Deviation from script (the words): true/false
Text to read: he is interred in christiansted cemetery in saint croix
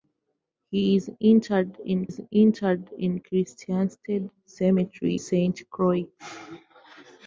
true